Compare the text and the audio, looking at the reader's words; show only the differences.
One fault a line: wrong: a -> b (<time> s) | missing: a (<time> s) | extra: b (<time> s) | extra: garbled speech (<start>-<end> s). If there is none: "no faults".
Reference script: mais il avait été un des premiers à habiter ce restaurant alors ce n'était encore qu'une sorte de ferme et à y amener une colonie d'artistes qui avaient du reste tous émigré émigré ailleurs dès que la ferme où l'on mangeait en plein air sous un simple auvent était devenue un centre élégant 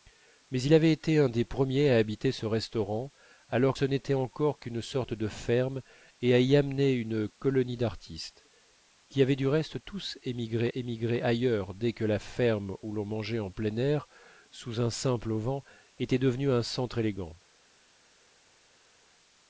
no faults